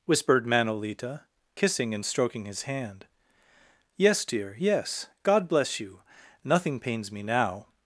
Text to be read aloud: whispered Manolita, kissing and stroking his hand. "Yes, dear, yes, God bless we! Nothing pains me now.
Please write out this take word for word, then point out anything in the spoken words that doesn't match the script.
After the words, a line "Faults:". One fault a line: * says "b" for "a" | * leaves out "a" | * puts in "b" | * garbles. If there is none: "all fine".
whispered Manolita, kissing and stroking his hand. "Yes, dear, yes, God bless you! Nothing pains me now.
Faults:
* says "you" for "we"